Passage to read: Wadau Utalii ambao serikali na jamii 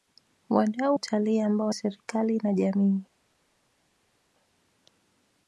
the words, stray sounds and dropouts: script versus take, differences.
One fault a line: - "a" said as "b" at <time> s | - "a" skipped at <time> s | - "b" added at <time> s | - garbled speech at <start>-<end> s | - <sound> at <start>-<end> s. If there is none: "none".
none